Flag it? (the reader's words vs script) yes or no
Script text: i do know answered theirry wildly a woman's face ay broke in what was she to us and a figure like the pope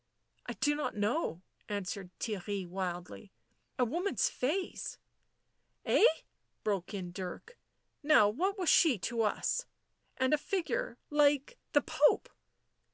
yes